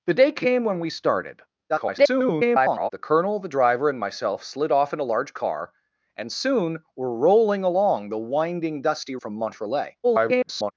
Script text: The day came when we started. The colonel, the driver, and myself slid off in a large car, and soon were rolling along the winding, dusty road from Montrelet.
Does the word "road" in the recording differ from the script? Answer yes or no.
yes